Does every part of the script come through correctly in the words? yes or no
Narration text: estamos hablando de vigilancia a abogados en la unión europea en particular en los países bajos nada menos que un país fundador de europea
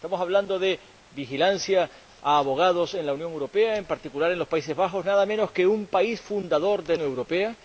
yes